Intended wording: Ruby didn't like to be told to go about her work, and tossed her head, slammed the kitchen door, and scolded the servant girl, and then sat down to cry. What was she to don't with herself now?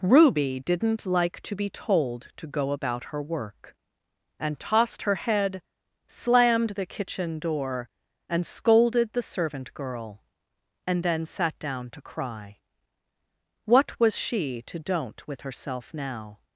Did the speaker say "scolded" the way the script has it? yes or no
yes